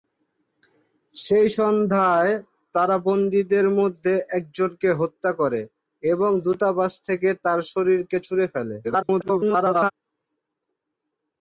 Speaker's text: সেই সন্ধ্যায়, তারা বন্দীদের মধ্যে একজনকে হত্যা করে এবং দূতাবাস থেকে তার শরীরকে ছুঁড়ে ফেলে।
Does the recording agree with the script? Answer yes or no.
no